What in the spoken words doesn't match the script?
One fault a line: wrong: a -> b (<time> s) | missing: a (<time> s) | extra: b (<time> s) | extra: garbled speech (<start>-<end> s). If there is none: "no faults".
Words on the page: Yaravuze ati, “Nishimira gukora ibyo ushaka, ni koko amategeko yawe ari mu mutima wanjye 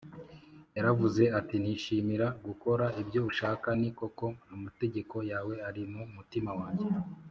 no faults